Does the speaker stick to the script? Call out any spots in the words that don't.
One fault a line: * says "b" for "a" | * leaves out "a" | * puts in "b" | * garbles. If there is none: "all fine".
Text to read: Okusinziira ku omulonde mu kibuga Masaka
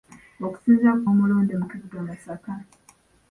all fine